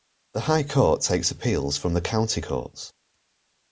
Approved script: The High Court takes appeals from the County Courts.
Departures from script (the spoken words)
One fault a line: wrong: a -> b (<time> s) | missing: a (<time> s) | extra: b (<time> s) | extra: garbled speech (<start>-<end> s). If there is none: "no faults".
no faults